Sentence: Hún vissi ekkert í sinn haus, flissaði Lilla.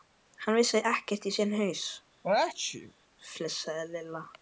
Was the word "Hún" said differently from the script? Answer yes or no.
yes